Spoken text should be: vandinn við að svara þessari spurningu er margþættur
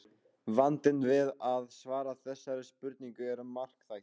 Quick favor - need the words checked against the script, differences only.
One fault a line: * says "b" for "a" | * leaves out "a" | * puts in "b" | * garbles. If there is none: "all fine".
all fine